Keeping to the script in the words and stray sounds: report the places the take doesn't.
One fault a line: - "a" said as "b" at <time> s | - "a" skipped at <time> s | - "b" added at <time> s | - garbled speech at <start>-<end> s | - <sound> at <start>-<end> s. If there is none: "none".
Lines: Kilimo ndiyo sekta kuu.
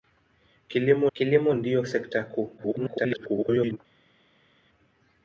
- "kilimo" added at 1.1 s
- garbled speech at 2.6-3.8 s